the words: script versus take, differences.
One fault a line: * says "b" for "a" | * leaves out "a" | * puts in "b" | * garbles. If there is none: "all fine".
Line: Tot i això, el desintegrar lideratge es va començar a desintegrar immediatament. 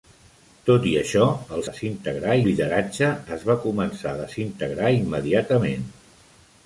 all fine